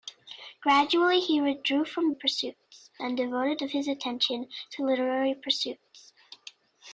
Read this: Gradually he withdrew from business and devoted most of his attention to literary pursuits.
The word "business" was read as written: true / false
false